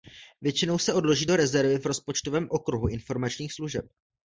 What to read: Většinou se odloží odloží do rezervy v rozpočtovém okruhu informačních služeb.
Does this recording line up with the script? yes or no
no